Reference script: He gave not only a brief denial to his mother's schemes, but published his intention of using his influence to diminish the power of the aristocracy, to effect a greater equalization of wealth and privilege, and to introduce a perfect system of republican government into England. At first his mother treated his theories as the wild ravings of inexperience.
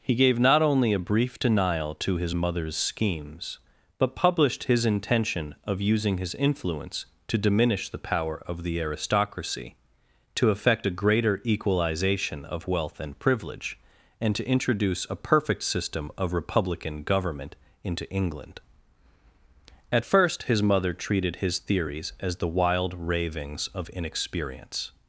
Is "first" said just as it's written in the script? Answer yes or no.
yes